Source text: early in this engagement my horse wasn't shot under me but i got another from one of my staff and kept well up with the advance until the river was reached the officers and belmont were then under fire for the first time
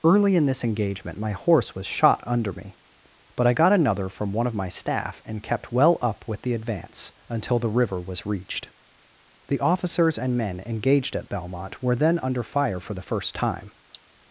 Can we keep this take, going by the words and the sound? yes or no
no